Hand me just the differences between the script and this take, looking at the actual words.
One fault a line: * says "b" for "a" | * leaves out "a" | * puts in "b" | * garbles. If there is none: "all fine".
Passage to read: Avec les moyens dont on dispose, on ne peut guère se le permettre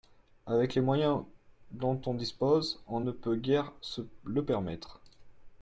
all fine